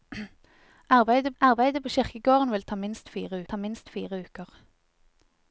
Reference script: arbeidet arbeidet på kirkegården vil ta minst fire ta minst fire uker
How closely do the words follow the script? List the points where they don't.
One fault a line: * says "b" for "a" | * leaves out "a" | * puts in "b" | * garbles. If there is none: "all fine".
all fine